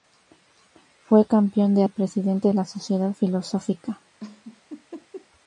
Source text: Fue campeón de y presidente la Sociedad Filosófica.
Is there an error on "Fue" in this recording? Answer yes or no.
no